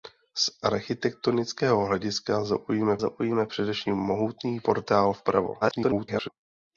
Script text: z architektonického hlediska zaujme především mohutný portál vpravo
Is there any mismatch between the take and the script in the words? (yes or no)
yes